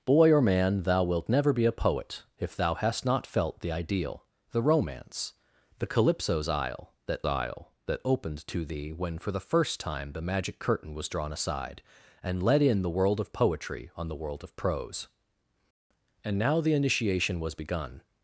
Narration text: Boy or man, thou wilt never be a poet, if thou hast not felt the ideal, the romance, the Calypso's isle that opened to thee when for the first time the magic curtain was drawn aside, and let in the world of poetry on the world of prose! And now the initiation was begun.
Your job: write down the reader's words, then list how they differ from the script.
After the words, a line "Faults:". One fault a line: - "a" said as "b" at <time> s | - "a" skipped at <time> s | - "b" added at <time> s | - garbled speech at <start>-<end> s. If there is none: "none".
Boy or man, thou wilt never be a poet, if thou hast not felt the ideal, the romance, the Calypso's isle that isle that opened to thee when for the first time the magic curtain was drawn aside, and let in the world of poetry on the world of prose! And now the initiation was begun.
Faults:
- "isle that" added at 7.3 s